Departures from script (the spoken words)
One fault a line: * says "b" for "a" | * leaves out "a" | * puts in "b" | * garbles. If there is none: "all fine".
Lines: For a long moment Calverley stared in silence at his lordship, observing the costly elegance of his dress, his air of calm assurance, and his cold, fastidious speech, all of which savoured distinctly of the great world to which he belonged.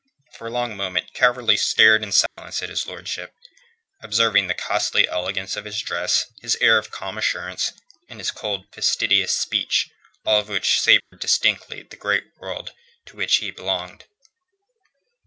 all fine